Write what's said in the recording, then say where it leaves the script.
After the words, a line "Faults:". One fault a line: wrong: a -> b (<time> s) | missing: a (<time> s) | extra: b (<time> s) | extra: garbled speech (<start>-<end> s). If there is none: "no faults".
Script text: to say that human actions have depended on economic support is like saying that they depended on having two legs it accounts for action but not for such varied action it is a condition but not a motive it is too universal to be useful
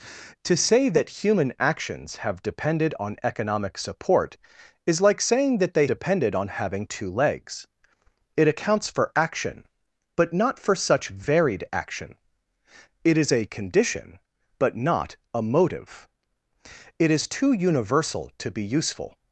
to say that human actions have depended on economic support is like saying that they depended on having two legs it accounts for action but not for such varied action it is a condition but not a motive it is too universal to be useful
Faults:
no faults